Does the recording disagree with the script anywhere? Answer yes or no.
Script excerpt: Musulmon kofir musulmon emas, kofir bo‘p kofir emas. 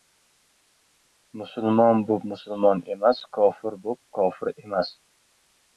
yes